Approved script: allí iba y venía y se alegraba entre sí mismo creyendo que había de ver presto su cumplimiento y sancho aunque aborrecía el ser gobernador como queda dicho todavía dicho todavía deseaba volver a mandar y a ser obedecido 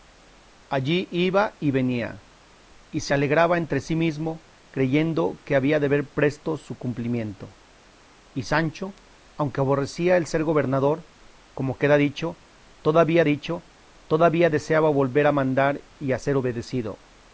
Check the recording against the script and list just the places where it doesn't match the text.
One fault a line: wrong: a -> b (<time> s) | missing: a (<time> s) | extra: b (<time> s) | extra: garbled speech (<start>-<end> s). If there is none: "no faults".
no faults